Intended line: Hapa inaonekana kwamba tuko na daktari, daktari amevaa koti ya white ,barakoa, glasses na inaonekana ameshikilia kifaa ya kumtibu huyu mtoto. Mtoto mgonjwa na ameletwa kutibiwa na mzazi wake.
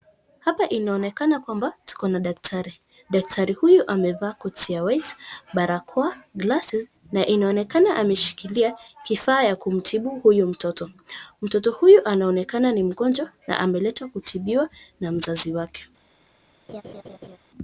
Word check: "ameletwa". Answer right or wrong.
right